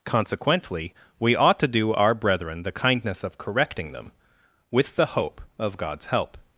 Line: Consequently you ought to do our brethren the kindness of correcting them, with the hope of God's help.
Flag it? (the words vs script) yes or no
yes